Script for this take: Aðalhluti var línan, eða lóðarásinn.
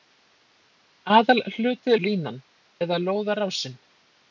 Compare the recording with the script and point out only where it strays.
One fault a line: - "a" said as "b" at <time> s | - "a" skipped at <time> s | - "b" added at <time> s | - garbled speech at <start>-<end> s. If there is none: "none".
none